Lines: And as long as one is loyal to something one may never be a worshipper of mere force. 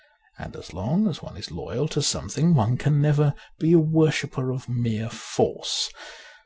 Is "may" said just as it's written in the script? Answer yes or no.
no